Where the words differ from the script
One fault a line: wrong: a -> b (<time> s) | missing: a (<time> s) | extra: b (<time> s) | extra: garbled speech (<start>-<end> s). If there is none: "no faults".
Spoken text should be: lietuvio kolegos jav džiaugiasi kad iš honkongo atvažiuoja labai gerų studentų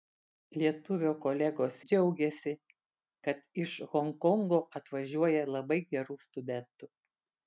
missing: jav (1.8 s)